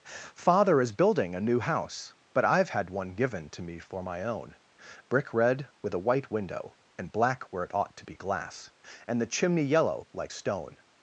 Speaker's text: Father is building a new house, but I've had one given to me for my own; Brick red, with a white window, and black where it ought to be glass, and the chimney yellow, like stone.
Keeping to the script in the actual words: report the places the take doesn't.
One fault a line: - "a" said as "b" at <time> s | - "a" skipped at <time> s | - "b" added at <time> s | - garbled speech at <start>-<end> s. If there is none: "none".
none